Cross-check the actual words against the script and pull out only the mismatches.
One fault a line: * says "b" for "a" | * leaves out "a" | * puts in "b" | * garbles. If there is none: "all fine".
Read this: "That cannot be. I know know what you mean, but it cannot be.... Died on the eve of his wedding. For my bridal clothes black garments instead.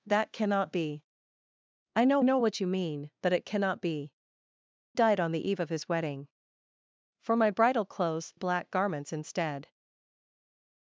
all fine